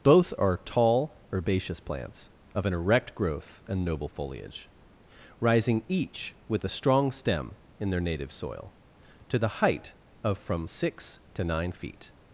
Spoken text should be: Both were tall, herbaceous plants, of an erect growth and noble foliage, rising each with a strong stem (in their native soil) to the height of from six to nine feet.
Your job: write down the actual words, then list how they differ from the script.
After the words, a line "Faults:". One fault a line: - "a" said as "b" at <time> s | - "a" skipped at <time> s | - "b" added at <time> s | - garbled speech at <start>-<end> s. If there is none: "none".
Both are tall, herbaceous plants, of an erect growth and noble foliage, rising each with a strong stem (in their native soil) to the height of from six to nine feet.
Faults:
- "were" said as "are" at 0.4 s